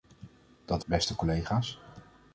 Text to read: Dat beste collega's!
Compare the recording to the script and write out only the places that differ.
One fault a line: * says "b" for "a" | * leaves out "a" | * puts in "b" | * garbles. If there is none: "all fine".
all fine